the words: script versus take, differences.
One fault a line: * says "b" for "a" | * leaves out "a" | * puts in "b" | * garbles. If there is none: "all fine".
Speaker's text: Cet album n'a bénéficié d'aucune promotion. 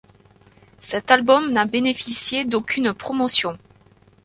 all fine